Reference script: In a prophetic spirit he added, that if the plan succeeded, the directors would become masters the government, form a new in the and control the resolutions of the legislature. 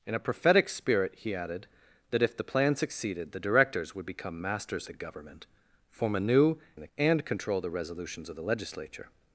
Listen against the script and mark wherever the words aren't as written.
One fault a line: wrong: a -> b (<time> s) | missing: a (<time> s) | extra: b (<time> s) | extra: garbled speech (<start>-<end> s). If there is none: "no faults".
no faults